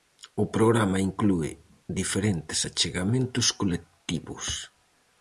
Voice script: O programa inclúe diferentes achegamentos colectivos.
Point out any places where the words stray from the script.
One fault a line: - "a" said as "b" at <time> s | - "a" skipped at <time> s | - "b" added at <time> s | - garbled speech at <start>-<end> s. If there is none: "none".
none